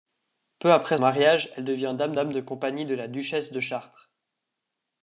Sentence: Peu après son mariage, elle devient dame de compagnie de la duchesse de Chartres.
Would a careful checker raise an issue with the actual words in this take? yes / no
yes